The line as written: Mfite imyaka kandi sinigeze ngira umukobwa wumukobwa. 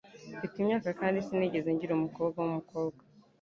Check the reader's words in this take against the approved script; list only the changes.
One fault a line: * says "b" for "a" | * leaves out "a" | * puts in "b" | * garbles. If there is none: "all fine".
all fine